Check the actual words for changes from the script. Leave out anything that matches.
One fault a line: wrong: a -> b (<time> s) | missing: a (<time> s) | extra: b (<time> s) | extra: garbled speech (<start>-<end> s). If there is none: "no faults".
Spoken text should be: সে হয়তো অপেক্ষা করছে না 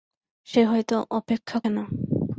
missing: করছে (1.6 s)